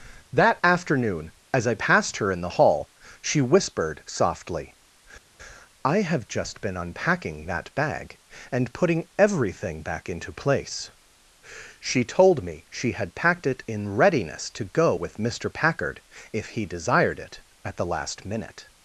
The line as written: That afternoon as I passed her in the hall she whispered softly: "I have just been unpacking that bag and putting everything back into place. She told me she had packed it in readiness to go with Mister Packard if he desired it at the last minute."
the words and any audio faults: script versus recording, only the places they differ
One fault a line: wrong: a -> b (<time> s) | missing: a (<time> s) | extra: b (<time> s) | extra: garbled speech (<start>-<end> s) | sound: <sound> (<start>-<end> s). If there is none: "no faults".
no faults